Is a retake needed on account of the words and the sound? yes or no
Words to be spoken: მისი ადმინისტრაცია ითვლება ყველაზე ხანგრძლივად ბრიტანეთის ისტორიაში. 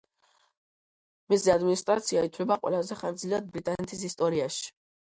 no